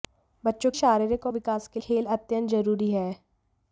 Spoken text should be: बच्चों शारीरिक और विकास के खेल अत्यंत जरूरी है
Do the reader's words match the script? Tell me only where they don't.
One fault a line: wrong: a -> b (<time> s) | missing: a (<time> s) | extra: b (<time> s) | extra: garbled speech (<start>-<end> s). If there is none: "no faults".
no faults